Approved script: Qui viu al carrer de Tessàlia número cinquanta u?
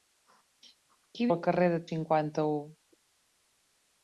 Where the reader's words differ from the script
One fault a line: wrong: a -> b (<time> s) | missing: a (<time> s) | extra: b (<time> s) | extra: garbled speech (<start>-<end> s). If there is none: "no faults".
missing: viu (1.3 s)
missing: Tessàlia número (1.8 s)